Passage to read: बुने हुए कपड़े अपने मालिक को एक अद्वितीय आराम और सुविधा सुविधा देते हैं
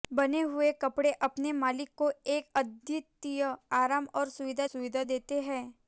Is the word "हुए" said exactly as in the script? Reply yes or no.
yes